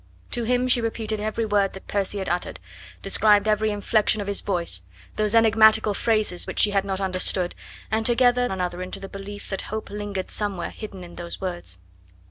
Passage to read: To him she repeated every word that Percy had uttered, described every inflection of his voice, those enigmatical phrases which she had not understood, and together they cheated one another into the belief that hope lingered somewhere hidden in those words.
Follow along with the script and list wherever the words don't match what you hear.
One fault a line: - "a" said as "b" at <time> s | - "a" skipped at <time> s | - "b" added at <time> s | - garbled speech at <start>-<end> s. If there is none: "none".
- "they cheated one" skipped at 8.5 s